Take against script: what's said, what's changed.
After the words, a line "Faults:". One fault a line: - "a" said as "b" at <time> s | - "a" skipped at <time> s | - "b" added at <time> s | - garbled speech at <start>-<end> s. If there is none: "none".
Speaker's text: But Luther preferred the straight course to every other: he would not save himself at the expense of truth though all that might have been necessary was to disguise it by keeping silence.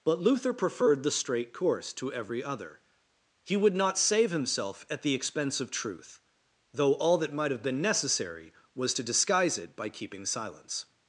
But Luther preferred the straight course to every other: he would not save himself at the expense of truth though all that might have been necessary was to disguise it by keeping silence.
Faults:
none